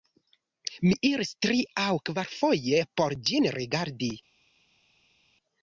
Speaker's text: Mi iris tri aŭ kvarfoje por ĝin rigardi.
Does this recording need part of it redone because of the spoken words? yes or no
no